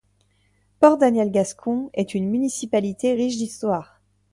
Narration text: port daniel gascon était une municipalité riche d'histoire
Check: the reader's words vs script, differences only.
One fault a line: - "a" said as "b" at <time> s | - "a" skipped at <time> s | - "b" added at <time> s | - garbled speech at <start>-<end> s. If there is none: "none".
- "était" said as "est" at 1.9 s